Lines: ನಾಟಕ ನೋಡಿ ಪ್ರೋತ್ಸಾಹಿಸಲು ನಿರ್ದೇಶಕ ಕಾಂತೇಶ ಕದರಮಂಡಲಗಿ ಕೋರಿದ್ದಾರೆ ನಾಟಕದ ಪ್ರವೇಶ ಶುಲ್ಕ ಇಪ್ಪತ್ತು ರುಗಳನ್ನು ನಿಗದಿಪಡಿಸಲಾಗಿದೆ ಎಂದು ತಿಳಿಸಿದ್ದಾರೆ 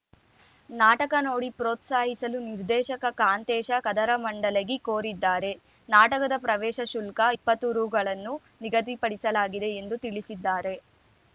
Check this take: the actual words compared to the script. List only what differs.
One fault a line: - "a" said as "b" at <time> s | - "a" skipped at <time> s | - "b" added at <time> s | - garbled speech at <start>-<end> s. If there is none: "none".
none